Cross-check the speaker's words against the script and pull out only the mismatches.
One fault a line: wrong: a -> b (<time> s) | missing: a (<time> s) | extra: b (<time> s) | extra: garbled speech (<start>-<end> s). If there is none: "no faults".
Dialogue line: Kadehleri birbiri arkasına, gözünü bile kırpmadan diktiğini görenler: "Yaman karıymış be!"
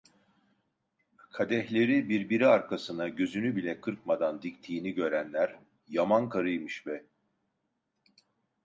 no faults